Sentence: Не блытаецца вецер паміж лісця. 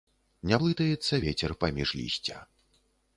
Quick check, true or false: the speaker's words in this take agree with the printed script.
true